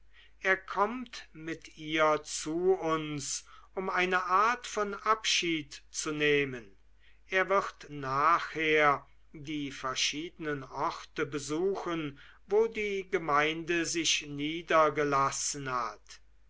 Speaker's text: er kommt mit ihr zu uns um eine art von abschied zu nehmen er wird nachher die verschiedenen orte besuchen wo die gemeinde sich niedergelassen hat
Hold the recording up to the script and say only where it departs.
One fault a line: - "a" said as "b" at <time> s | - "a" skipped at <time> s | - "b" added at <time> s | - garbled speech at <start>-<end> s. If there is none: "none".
none